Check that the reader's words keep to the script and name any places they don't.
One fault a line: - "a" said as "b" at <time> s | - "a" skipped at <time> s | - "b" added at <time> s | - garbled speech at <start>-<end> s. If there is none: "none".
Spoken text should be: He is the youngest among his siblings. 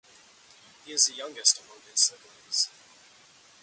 none